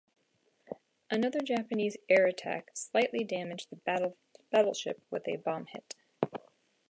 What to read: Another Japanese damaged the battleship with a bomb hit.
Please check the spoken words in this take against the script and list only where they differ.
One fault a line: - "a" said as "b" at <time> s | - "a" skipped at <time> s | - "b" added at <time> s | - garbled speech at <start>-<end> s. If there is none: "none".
- "air attack slightly" added at 2.1 s